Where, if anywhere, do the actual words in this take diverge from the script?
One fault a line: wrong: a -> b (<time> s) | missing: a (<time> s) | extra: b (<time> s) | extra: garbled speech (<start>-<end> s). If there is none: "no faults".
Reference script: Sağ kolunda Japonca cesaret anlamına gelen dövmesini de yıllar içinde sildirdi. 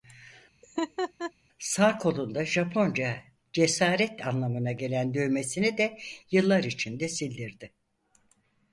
no faults